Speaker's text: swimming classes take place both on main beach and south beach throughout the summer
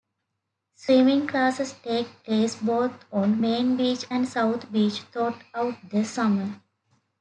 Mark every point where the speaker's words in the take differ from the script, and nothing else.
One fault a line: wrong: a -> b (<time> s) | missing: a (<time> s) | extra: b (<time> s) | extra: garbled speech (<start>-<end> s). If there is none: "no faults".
no faults